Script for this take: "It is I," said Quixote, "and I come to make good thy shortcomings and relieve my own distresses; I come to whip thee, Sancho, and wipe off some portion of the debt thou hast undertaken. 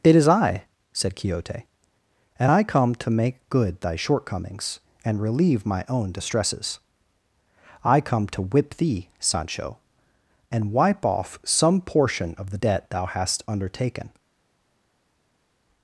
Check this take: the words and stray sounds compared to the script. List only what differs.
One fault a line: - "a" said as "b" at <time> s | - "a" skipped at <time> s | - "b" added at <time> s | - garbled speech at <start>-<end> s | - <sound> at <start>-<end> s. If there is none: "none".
none